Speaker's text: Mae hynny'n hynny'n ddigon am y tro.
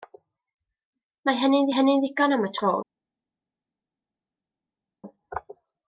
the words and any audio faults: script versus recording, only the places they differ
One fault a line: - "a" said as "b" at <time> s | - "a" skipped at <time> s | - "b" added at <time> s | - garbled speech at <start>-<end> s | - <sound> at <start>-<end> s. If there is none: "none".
none